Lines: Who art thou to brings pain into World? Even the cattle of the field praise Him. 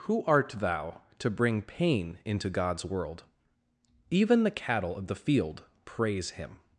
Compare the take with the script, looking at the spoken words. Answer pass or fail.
fail